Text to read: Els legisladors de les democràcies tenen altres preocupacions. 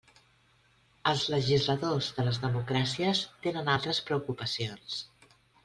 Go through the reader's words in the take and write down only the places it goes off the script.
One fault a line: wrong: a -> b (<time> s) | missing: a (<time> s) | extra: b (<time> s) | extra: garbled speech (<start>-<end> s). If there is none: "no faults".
no faults